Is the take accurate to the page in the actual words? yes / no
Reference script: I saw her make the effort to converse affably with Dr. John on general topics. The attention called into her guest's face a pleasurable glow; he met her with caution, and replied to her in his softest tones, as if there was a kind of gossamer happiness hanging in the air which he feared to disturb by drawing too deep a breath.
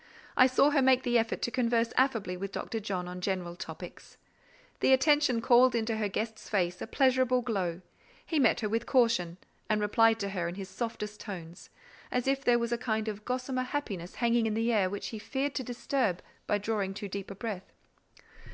yes